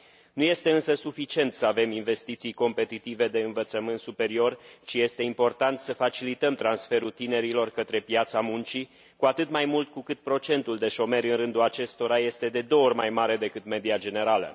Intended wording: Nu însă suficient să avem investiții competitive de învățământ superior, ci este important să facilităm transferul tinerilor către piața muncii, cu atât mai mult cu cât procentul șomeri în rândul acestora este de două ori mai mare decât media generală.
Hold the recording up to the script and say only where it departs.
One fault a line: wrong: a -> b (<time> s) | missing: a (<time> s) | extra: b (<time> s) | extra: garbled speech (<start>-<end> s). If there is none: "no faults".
extra: este (0.4 s)
extra: de (10.8 s)